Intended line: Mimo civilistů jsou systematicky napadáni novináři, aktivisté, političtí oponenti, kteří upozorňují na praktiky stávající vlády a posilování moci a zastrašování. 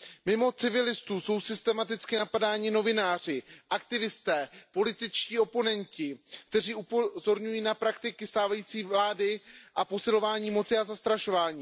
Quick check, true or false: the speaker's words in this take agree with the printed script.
true